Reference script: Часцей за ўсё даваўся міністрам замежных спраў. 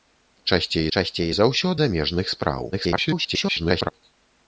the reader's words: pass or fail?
fail